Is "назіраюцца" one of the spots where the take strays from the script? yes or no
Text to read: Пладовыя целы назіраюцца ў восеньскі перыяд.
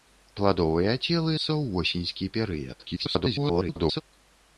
yes